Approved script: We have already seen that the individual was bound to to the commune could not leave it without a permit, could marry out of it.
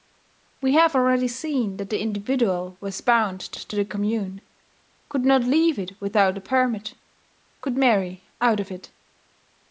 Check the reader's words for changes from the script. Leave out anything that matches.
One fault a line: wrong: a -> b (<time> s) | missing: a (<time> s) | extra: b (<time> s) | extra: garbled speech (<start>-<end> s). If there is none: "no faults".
no faults